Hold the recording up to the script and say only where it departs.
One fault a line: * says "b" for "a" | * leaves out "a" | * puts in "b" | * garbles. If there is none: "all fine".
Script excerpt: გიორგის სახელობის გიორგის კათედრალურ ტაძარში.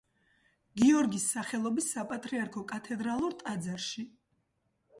* says "საპატრიარქო" for "გიორგის"